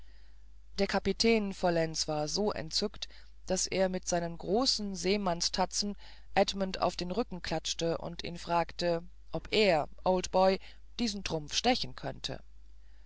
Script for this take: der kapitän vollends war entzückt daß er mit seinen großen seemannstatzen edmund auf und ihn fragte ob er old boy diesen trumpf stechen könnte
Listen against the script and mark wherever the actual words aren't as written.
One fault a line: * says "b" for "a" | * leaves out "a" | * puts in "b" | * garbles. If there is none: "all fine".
* puts in "so"
* puts in "den rücken klatschte"